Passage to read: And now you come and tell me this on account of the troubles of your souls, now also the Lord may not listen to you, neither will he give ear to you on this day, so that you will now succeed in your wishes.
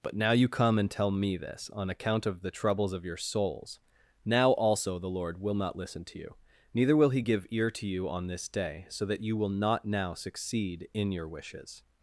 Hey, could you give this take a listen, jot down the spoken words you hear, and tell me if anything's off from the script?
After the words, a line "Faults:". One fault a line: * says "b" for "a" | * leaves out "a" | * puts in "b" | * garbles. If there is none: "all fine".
But now you come and tell me this on account of the troubles of your souls, now also the Lord will not listen to you, neither will he give ear to you on this day, so that you will not now succeed in your wishes.
Faults:
* says "But" for "And"
* says "will" for "may"
* puts in "not"